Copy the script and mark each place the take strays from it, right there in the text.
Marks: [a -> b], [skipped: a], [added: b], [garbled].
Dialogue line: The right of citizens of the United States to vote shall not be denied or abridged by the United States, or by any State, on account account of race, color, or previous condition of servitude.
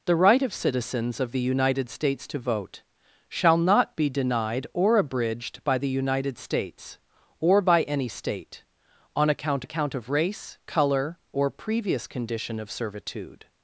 The right of citizens of the United States to vote shall not be denied or abridged by the United States, or by any State, on account account of race, color, or previous condition of servitude.